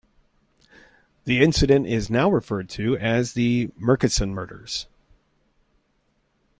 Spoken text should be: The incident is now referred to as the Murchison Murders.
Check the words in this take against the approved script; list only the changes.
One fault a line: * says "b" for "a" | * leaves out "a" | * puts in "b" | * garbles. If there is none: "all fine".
all fine